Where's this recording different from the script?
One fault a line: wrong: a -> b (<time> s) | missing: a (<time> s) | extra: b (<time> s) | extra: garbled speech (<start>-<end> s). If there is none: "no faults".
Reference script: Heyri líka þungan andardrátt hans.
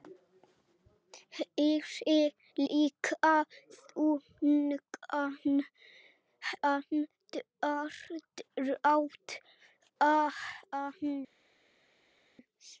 no faults